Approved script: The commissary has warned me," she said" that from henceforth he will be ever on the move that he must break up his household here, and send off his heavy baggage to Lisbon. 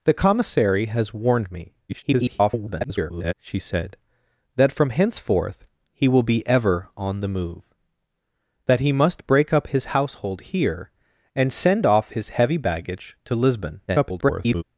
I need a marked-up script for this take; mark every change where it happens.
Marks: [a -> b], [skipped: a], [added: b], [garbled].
The commissary has warned me," [garbled] she said" that from henceforth he will be ever on the move that he must break up his household here, and send off his heavy baggage to Lisbon. [garbled]